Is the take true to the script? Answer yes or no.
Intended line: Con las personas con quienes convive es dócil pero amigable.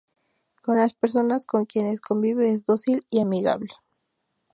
no